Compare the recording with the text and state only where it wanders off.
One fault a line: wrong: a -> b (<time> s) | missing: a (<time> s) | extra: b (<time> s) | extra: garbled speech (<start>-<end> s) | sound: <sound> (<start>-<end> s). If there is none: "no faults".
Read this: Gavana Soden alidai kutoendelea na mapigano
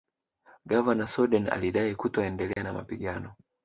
sound: dropout (2.5-2.6 s)